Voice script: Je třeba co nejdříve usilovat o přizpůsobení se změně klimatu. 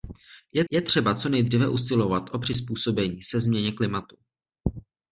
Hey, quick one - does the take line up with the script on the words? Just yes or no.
no